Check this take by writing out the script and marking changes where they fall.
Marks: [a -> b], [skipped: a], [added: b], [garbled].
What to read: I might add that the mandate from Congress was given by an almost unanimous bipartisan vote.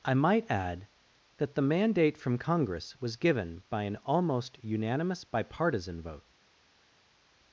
I might add that the mandate from Congress was given by an almost unanimous bipartisan vote.